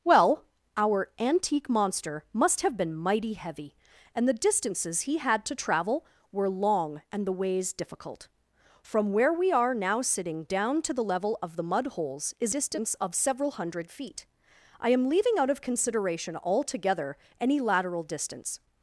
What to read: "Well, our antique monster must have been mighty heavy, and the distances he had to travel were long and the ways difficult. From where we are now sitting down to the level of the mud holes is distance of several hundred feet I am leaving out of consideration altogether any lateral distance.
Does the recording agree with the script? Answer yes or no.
yes